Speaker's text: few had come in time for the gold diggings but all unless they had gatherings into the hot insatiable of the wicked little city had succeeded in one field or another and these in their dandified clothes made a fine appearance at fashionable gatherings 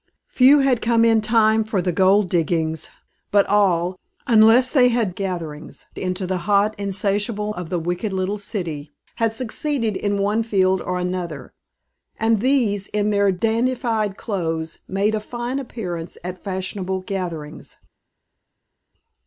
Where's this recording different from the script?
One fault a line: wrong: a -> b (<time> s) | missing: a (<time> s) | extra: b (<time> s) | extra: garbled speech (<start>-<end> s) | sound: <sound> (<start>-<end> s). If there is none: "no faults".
no faults